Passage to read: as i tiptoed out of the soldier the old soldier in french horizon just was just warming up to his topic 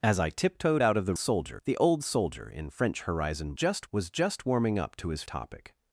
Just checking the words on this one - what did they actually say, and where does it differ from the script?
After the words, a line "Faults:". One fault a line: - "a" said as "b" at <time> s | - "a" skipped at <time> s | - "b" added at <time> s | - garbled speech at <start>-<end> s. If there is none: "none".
as i tiptoed out of the soldier the old soldier in french horizon just was just warming up to his topic
Faults:
none